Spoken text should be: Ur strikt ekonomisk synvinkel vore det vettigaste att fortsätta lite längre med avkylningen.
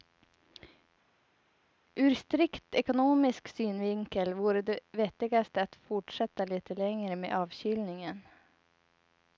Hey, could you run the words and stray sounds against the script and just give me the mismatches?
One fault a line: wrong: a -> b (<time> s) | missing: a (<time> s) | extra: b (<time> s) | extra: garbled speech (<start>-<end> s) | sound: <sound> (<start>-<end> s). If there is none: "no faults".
no faults